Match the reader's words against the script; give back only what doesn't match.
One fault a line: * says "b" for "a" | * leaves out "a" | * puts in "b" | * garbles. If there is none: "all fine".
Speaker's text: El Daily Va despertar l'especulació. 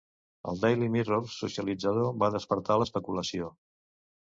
* puts in "Mirror socialitzador"